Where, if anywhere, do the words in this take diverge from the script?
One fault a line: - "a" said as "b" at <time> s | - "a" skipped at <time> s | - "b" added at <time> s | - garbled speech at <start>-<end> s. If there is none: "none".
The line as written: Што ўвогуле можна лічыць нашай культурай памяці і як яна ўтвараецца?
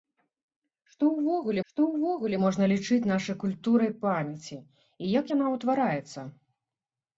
- "што ўвогуле" added at 1.7 s